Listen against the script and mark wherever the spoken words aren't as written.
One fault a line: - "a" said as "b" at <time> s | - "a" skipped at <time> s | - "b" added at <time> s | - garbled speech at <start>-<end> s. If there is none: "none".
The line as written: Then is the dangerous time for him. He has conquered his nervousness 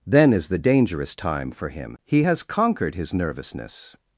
none